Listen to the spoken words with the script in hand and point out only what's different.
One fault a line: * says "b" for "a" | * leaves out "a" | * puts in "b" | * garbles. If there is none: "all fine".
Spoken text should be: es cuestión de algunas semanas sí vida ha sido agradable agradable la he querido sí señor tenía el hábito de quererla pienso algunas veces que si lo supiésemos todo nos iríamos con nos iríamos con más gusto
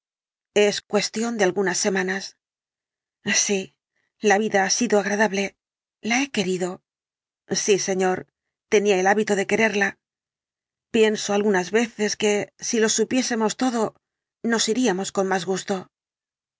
* puts in "la"
* leaves out "agradable"
* leaves out "nos iríamos con"